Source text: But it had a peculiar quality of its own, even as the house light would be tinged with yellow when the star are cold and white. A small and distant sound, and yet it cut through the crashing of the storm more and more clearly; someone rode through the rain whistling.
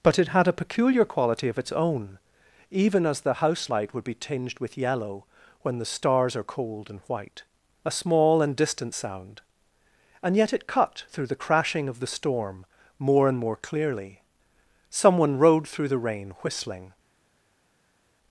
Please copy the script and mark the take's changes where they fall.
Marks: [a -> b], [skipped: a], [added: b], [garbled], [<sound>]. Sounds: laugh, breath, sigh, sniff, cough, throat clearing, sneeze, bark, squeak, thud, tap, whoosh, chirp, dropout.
But it had a peculiar quality of its own, even as the house light would be tinged with yellow when the [star -> stars] are cold and white. A small and distant sound, and yet it cut through the crashing of the storm more and more clearly; someone rode through the rain whistling.